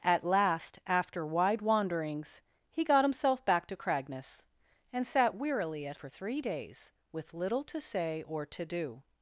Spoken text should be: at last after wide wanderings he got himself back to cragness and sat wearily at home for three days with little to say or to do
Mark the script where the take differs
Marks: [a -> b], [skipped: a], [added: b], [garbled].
at last after wide wanderings he got himself back to cragness and sat wearily at [skipped: home] for three days with little to say or to do